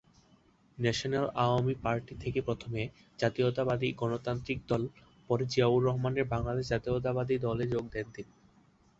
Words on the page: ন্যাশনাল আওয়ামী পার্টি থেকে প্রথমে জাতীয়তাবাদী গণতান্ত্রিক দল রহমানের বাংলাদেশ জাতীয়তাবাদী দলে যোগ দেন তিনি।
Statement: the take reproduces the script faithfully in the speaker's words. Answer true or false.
false